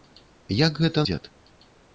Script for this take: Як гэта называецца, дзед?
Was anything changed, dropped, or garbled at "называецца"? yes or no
yes